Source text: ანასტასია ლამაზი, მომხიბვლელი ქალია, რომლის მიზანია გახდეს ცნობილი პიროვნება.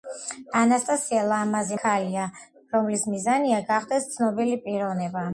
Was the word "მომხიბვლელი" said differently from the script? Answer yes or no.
yes